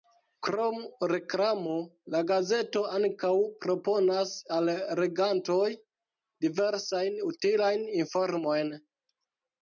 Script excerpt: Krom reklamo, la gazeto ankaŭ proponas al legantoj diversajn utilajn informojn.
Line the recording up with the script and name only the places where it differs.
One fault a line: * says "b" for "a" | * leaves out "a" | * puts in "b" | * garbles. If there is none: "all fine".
all fine